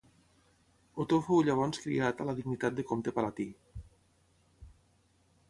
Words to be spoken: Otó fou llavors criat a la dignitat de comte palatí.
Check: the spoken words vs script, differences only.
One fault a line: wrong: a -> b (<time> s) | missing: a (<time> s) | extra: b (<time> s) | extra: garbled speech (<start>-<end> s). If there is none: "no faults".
no faults